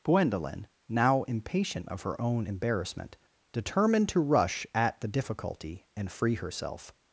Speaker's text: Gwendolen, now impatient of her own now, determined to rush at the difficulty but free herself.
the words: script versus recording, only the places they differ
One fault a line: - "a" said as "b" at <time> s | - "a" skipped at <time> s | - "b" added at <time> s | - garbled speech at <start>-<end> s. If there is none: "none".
- "now" said as "embarrassment" at 2.4 s
- "but" said as "and" at 6.0 s